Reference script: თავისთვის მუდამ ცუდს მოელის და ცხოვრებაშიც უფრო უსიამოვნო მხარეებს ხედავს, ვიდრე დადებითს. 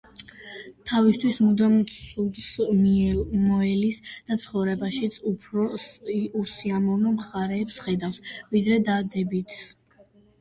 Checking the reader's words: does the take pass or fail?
pass